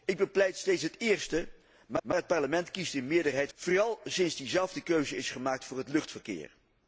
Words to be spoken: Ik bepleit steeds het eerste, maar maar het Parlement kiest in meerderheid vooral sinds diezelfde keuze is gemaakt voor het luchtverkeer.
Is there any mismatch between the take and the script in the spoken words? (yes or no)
no